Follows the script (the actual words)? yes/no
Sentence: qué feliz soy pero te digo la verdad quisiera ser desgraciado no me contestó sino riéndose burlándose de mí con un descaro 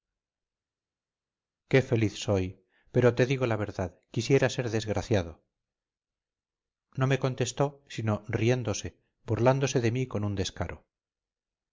yes